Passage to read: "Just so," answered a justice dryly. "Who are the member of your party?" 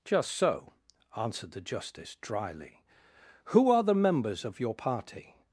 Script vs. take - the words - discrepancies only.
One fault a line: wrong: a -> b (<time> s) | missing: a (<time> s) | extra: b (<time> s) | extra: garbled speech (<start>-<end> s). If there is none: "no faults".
wrong: a -> the (1.5 s)
wrong: member -> members (4.0 s)